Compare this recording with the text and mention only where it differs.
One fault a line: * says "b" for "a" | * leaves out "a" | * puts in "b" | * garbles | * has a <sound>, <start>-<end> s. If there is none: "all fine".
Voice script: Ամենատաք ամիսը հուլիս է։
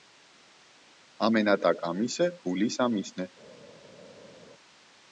* puts in "ամիսն"